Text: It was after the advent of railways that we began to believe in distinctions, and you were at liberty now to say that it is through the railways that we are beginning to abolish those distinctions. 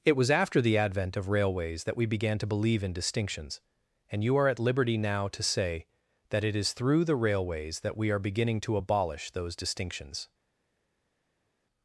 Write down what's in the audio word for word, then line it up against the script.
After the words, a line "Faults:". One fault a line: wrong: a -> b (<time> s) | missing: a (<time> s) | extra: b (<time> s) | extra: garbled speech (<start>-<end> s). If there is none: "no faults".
It was after the advent of railways that we began to believe in distinctions, and you are at liberty now to say that it is through the railways that we are beginning to abolish those distinctions.
Faults:
wrong: were -> are (4.3 s)